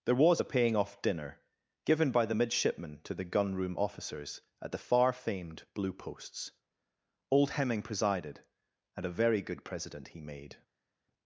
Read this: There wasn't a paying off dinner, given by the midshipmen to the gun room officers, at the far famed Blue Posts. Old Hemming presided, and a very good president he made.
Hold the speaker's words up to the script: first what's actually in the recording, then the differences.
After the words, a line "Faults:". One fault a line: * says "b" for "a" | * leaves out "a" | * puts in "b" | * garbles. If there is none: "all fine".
There was a paying off dinner, given by the midshipmen to the gun room officers, at the far famed Blue Posts. Old Hemming presided, and a very good president he made.
Faults:
* says "was" for "wasn't"